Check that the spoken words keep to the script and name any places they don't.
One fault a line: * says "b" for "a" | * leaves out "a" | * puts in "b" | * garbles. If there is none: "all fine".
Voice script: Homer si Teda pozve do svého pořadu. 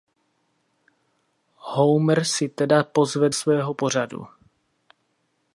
* leaves out "do"